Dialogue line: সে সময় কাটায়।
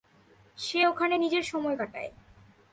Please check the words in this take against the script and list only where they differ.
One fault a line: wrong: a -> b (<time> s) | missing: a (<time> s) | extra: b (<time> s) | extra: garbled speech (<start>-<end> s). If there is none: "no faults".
extra: ওখানে নিজের (0.8 s)